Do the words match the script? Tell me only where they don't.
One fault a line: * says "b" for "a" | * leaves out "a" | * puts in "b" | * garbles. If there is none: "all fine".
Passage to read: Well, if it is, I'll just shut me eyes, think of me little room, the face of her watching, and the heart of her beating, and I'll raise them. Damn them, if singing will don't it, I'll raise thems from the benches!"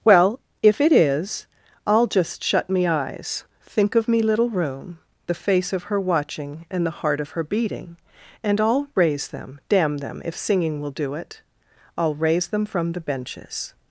* says "do" for "don't"
* says "them" for "thems"